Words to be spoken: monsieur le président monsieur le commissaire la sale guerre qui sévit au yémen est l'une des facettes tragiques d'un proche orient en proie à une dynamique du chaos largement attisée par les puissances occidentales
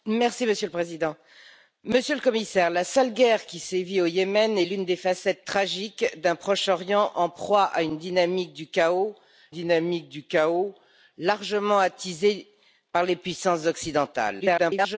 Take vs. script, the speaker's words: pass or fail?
fail